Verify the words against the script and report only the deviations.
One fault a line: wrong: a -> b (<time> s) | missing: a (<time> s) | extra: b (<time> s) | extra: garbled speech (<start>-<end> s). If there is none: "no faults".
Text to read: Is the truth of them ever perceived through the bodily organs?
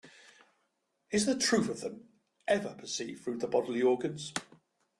no faults